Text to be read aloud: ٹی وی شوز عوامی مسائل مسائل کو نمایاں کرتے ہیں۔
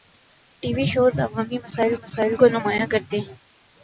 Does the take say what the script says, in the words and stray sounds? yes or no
yes